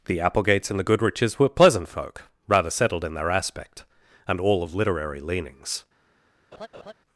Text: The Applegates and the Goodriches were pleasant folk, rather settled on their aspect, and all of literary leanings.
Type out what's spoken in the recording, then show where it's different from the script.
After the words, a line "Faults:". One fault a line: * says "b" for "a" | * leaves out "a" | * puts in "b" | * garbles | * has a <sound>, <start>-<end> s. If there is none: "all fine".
The Applegates and the Goodriches were pleasant folk, rather settled in their aspect, and all of literary leanings.
Faults:
* says "in" for "on"
* has a laugh, 6.5-6.9 s